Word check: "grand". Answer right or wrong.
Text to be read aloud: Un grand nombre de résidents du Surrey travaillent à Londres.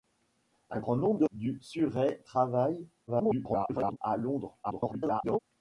right